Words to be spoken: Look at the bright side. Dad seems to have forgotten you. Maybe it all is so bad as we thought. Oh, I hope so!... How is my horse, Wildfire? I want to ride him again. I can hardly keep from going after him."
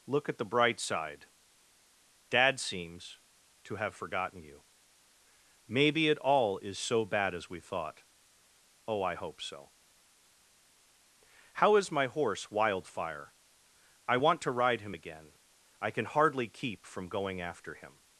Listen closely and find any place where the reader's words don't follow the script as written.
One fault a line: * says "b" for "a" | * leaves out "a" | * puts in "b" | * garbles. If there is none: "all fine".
all fine